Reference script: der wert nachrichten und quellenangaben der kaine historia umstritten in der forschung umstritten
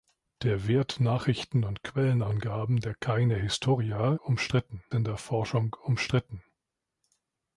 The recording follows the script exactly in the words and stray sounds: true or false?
true